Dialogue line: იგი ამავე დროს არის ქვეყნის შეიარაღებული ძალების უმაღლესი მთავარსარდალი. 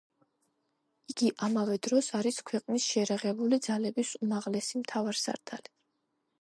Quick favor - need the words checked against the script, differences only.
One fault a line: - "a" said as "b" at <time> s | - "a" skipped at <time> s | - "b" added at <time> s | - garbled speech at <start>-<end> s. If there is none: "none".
none